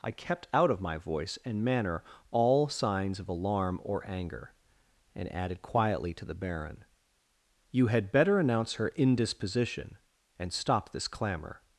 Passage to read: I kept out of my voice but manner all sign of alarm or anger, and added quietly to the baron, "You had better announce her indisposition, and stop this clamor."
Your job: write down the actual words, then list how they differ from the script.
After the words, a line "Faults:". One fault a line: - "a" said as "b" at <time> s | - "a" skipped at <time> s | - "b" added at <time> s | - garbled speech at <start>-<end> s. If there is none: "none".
I kept out of my voice and manner all signs of alarm or anger, and added quietly to the baron, "You had better announce her indisposition, and stop this clamor."
Faults:
- "but" said as "and" at 1.4 s
- "sign" said as "signs" at 2.7 s